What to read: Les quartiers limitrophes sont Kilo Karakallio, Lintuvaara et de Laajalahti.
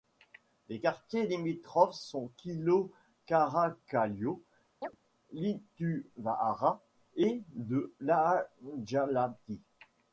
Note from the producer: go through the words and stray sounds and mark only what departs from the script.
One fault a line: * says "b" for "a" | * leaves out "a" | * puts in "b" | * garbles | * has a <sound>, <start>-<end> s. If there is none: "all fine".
* has a chirp, 4.8-5.0 s